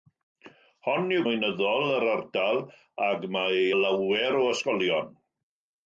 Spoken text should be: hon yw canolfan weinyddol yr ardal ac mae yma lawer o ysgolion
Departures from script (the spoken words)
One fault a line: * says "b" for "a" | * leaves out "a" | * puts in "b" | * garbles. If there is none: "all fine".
* leaves out "canolfan"
* leaves out "yma"